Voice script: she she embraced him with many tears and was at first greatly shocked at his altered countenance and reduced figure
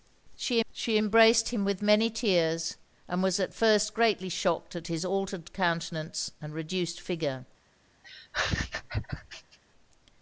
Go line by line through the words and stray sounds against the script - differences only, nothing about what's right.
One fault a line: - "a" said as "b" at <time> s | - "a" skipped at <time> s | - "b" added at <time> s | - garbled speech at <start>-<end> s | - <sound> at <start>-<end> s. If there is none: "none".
- laugh at 8.0-9.6 s